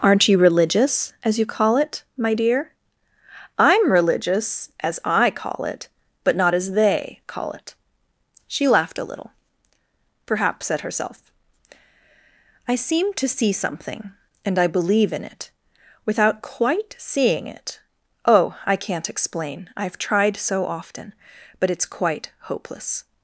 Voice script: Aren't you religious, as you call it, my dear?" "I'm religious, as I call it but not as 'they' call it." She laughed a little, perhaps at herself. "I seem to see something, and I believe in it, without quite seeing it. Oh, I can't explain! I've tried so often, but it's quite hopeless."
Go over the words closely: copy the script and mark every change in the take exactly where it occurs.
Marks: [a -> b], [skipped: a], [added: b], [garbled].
Aren't you religious, as you call it, my dear?" "I'm religious, as I call it but not as 'they' call it." She laughed a little, perhaps at herself. "I seem to see something, and I believe in it, without quite seeing it. Oh, I can't explain! I've tried so often, but it's quite hopeless."